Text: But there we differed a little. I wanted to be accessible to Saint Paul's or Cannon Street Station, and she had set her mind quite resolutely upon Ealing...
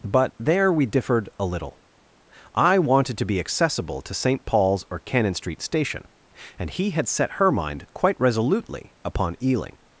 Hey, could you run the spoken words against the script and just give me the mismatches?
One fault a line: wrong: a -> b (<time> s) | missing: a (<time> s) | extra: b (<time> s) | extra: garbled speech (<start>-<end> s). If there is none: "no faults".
wrong: she -> he (6.7 s)